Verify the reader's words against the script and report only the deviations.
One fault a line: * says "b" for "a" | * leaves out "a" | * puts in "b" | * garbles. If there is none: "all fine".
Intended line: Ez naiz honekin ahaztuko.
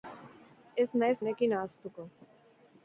all fine